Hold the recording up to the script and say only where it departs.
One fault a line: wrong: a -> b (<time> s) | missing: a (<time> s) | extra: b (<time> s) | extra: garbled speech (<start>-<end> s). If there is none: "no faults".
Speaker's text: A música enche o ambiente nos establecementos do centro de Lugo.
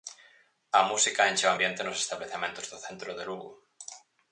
no faults